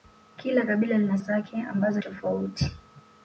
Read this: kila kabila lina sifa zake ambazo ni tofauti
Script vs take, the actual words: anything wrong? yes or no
yes